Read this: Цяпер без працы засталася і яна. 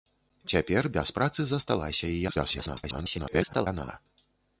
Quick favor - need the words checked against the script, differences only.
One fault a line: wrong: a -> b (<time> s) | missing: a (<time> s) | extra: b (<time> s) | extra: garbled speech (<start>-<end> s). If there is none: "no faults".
extra: garbled speech (2.3-3.7 s)